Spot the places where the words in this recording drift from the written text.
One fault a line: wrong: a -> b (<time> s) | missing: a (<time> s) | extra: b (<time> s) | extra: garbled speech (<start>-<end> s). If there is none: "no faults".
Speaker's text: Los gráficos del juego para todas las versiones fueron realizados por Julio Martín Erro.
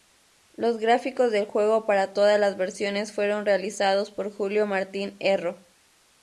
no faults